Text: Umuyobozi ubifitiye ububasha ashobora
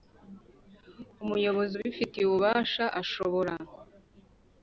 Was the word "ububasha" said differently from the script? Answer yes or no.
no